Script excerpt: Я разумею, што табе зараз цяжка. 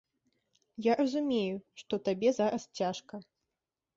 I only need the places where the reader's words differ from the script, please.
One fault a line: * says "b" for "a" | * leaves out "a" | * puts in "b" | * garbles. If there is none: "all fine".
all fine